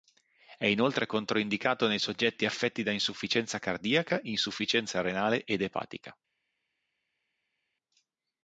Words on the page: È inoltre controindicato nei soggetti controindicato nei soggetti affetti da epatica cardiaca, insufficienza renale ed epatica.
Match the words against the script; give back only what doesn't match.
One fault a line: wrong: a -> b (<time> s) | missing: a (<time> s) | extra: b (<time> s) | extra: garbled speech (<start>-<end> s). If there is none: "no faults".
missing: controindicato nei soggetti (2.5 s)
wrong: epatica -> insufficienza (2.9 s)